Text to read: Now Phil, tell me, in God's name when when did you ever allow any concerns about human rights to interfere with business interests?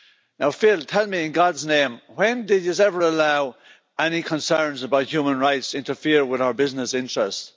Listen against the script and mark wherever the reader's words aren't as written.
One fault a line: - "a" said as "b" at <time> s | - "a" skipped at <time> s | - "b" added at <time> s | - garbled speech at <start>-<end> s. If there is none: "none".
- "when" skipped at 2.5 s
- "our" added at 6.4 s